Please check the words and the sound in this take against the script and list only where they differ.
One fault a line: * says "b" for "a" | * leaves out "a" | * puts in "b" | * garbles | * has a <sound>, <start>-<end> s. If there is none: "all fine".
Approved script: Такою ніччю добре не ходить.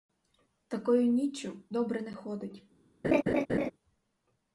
* has a laugh, 3.0-3.7 s